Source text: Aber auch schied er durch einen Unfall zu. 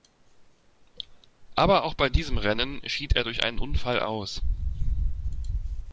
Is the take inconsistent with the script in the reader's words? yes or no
yes